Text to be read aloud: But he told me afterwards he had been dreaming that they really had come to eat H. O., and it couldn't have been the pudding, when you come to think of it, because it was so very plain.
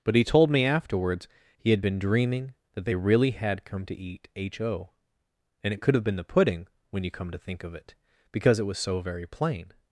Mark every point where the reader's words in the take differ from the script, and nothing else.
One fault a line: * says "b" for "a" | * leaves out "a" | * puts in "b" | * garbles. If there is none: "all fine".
* says "could" for "couldn't"